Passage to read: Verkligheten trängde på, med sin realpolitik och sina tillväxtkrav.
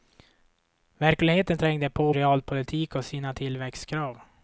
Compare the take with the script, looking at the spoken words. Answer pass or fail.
fail